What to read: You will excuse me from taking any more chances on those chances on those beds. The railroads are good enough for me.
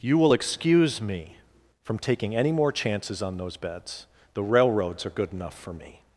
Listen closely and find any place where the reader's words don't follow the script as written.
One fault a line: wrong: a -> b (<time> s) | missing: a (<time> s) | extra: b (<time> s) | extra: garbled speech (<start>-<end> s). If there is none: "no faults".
missing: chances on those (3.6 s)